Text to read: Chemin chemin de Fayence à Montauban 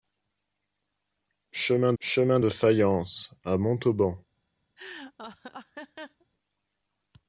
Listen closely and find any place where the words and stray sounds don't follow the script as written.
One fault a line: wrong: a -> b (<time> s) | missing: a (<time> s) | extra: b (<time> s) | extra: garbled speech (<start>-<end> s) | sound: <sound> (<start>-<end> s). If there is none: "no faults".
sound: laugh (4.8-6.3 s)